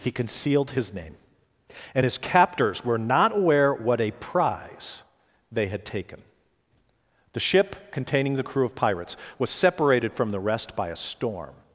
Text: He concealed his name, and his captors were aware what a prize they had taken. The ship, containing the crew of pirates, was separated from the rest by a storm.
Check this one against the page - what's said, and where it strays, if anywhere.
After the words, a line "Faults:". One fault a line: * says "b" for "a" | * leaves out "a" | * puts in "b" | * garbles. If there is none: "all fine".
He concealed his name, and his captors were not aware what a prize they had taken. The ship, containing the crew of pirates, was separated from the rest by a storm.
Faults:
* puts in "not"